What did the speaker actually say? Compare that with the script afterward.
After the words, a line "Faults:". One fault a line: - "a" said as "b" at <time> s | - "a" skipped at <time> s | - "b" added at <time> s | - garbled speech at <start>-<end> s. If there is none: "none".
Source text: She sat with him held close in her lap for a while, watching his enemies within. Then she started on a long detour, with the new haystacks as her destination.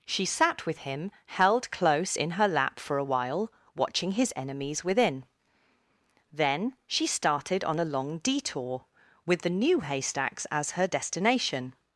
She sat with him held close in her lap for a while, watching his enemies within. Then she started on a long detour, with the new haystacks as her destination.
Faults:
none